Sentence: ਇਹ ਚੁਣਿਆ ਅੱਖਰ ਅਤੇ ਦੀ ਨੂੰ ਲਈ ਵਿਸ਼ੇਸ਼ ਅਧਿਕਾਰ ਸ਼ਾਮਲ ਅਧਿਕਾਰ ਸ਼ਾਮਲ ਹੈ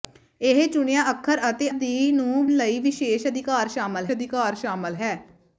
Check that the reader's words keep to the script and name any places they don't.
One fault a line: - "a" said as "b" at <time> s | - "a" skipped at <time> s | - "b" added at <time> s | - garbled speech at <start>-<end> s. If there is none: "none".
none